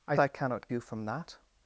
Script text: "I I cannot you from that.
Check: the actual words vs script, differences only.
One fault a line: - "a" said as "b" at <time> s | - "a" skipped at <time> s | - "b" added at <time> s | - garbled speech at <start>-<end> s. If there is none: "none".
none